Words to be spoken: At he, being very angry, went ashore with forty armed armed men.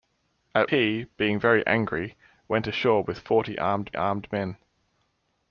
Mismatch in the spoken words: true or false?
false